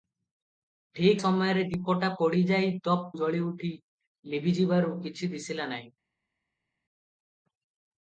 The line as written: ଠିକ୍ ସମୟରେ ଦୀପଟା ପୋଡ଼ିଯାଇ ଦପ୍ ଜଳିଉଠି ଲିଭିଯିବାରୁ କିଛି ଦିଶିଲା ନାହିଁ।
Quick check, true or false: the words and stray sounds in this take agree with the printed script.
true